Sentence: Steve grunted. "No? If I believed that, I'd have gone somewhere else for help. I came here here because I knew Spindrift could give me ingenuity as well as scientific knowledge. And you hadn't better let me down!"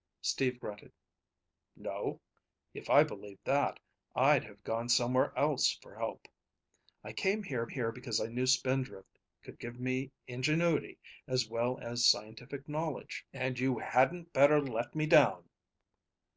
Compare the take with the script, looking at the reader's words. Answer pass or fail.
pass